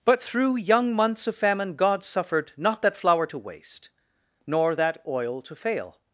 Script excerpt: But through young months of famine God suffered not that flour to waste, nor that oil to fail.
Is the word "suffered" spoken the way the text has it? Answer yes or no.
yes